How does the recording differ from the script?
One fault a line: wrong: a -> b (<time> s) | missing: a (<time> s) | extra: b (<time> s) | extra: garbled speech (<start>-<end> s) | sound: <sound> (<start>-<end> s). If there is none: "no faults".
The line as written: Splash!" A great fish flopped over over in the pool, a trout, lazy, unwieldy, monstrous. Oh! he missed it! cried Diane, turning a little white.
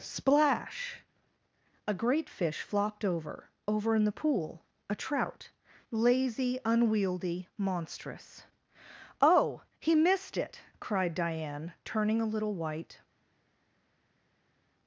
no faults